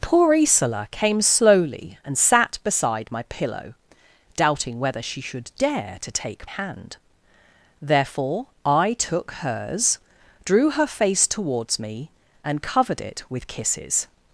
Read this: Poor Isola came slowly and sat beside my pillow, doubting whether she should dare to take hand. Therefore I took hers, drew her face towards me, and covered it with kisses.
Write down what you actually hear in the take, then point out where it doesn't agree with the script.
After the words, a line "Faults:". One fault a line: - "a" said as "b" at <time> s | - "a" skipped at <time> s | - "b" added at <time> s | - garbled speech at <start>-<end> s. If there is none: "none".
Poor Isola came slowly and sat beside my pillow, doubting whether she should dare to take hand. Therefore I took hers, drew her face towards me, and covered it with kisses.
Faults:
none